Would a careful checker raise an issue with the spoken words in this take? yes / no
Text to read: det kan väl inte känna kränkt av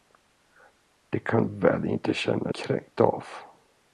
no